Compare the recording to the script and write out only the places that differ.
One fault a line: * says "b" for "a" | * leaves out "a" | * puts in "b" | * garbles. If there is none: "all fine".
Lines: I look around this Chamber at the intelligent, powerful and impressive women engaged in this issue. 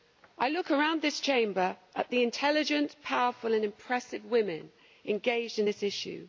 all fine